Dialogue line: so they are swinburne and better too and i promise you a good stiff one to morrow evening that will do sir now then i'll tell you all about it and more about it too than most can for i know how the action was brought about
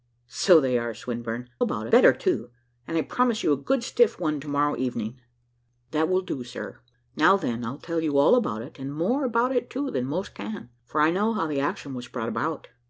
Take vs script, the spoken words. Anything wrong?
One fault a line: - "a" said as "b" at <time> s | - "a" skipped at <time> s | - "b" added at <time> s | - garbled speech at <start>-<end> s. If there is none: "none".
- "and" said as "about" at 1.6 s